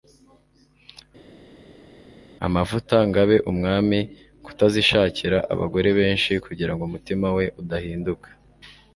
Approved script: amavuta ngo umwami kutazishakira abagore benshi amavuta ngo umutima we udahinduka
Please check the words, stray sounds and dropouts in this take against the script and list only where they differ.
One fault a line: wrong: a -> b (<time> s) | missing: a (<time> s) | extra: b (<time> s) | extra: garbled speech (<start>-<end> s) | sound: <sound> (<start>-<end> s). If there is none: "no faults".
extra: abe (3.2 s)
wrong: amavuta -> kugira (6.4 s)